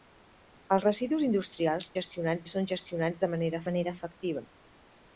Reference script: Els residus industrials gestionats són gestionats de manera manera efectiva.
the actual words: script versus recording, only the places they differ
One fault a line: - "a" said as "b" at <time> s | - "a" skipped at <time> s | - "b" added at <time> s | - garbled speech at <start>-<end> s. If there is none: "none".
none